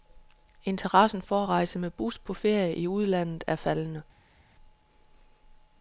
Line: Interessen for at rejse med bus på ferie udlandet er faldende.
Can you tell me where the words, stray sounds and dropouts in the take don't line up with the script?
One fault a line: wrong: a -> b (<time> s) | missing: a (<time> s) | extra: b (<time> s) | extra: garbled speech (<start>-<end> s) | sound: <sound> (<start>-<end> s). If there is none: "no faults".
extra: i (2.7 s)